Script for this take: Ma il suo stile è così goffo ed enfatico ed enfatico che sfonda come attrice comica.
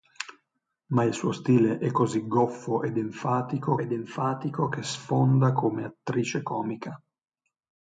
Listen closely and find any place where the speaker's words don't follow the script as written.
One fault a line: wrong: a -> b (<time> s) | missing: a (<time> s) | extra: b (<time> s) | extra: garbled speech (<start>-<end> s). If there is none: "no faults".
no faults